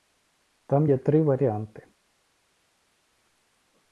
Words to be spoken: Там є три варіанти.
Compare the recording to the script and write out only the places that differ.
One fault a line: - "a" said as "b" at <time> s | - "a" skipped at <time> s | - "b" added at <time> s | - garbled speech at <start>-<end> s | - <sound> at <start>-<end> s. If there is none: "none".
none